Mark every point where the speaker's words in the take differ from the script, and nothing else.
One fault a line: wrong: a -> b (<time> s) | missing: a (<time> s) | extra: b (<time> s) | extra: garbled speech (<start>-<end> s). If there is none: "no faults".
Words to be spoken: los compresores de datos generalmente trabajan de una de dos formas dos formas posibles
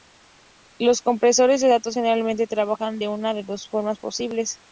missing: dos formas (4.0 s)